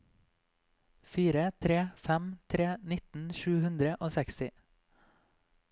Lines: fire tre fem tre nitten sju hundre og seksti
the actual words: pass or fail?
pass